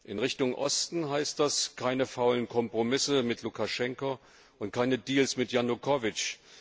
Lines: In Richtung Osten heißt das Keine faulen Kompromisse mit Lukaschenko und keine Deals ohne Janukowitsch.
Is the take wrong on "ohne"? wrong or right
wrong